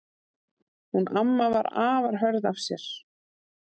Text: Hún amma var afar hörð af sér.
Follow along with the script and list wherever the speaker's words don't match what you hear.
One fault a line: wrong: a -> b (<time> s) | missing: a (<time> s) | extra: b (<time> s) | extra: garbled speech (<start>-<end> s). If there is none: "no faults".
no faults